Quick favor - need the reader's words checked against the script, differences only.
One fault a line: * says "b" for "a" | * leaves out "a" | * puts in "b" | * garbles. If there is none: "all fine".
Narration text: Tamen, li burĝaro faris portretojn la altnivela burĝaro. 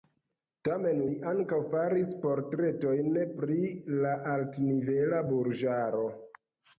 * says "ankaŭ" for "burĝaro"
* puts in "pri"